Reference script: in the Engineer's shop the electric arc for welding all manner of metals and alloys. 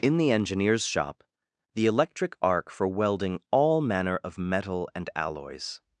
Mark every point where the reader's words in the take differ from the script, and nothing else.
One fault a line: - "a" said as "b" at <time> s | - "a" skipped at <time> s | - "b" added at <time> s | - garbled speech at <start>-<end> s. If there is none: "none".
- "metals" said as "metal" at 4.4 s